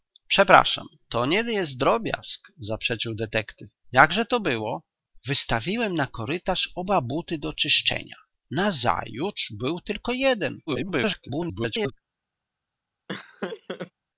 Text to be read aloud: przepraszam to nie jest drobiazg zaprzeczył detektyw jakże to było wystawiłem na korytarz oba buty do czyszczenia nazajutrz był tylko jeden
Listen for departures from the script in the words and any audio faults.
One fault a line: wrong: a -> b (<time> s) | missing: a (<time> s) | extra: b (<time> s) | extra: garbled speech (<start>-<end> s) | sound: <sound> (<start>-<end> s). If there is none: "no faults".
extra: garbled speech (10.7-11.9 s)
sound: laugh (13.1-13.9 s)